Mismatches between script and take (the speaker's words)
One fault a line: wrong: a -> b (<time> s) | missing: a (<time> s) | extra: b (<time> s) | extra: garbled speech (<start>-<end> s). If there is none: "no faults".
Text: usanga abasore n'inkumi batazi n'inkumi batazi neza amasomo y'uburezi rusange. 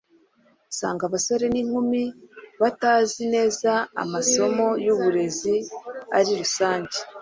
missing: n'inkumi batazi (3.2 s)
extra: ari (6.2 s)